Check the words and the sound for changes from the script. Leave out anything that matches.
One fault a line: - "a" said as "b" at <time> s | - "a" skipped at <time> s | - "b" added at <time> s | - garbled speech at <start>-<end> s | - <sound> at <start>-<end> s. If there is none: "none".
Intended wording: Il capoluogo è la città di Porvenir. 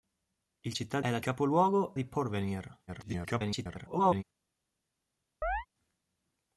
- "capoluogo" said as "città" at 0.7 s
- "città" said as "capoluogo" at 1.2 s
- garbled speech at 2.9-4.2 s
- chirp at 5.4-5.7 s